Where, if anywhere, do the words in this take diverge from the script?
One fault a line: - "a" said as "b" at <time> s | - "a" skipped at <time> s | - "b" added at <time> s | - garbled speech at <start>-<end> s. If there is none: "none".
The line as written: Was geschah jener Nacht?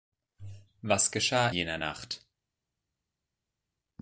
none